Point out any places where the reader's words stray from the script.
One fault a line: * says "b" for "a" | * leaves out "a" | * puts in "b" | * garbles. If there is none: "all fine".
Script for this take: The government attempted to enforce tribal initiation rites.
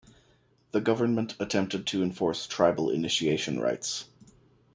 all fine